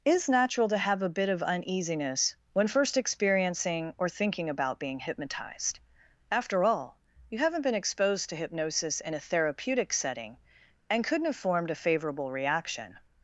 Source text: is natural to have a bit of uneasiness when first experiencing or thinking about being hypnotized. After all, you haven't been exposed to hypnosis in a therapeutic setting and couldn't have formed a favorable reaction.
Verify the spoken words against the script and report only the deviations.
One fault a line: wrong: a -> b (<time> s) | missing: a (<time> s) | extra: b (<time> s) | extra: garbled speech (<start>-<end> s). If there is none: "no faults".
no faults